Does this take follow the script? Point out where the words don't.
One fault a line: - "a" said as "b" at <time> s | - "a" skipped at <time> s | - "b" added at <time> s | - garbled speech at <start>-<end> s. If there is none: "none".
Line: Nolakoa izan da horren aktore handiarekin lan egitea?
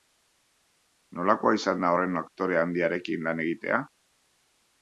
none